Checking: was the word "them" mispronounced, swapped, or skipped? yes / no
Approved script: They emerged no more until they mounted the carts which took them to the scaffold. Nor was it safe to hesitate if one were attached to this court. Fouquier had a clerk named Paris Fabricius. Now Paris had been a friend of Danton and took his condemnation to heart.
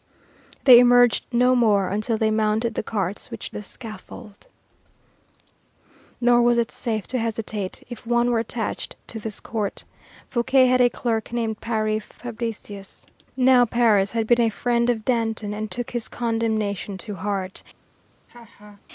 yes